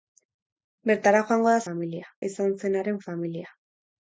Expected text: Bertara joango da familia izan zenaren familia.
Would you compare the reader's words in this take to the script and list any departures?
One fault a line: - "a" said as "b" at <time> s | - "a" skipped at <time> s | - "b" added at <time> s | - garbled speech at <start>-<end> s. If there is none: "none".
none